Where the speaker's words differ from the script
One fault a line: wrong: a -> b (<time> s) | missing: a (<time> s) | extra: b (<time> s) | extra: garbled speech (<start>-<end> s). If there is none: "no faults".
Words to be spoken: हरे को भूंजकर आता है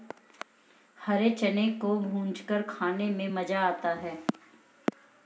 extra: चने (1.3 s)
extra: खाने में मज़ा (2.6 s)